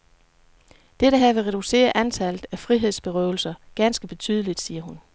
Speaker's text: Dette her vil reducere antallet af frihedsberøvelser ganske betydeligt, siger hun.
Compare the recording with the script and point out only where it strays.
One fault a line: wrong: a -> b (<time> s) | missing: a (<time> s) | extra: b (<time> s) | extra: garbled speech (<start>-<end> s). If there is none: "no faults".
no faults